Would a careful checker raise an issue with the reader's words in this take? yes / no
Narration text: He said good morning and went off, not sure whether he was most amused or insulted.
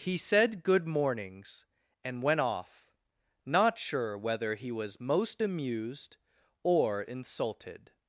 yes